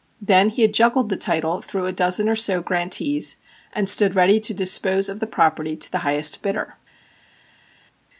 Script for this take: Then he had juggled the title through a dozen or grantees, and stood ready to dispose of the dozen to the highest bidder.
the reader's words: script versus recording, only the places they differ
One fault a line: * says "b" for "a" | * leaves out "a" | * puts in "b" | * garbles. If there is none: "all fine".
* puts in "so"
* says "property" for "dozen"